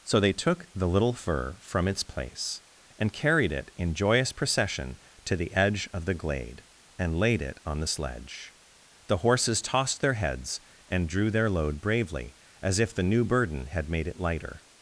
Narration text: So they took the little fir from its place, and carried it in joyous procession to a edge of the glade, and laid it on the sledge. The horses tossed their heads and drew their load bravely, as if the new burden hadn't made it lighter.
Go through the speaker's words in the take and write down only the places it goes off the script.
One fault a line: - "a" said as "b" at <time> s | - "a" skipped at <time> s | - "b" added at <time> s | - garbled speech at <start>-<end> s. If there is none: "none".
- "a" said as "the" at 5.3 s
- "hadn't" said as "had" at 13.7 s